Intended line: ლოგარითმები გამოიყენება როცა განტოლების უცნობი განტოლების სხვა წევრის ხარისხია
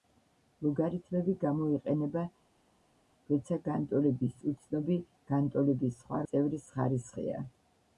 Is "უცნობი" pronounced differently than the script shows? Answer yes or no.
no